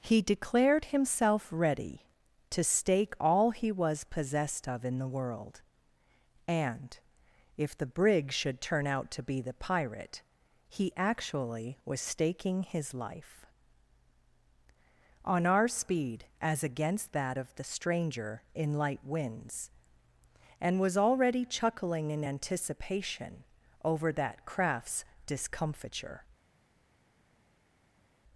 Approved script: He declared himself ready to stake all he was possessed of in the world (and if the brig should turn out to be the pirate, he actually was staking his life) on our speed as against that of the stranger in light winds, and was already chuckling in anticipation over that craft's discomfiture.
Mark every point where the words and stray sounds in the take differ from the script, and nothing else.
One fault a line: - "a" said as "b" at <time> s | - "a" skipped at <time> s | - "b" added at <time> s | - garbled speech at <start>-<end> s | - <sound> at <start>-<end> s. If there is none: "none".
none